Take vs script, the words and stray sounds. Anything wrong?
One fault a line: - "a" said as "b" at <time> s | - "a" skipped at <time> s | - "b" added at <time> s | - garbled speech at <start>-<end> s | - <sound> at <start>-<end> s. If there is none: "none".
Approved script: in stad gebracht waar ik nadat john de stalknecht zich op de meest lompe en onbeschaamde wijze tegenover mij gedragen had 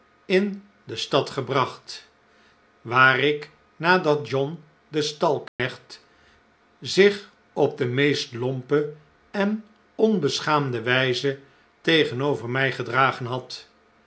- "de" added at 0.8 s
- dropout at 5.5-5.6 s